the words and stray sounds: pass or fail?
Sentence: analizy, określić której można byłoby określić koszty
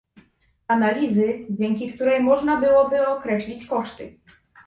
fail